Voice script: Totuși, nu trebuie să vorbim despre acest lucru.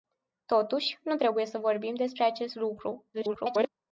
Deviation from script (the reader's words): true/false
true